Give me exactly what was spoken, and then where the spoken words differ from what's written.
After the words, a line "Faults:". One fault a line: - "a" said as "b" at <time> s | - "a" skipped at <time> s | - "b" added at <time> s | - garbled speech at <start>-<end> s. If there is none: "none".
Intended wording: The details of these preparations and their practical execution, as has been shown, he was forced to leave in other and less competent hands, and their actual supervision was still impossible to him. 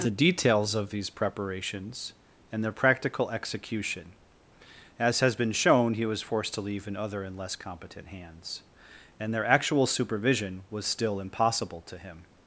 The details of these preparations and their practical execution, as has been shown, he was forced to leave in other and less competent hands, and their actual supervision was still impossible to him.
Faults:
none